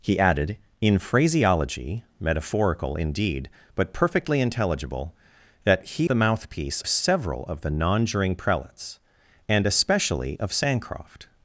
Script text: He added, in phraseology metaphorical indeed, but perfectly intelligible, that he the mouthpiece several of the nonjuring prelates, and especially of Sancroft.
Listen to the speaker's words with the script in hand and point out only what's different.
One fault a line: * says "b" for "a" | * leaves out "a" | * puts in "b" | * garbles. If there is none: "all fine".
all fine